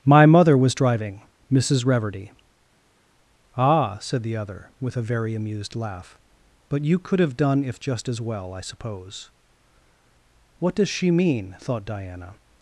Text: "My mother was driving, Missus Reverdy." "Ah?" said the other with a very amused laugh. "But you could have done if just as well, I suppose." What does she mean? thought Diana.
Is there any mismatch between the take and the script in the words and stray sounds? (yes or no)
no